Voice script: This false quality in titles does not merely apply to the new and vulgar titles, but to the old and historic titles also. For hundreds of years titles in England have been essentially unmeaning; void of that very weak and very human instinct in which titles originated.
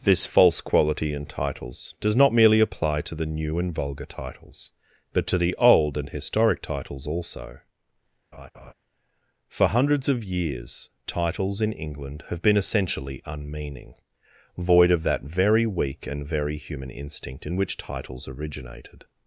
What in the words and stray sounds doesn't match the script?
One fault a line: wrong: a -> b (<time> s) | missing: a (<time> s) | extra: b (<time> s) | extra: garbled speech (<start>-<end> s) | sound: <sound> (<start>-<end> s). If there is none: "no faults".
sound: laugh (8.3-8.7 s)